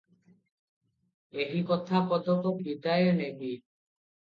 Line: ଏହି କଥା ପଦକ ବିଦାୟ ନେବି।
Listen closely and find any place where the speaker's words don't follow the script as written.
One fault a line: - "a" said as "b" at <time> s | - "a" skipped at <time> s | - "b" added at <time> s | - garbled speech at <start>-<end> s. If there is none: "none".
none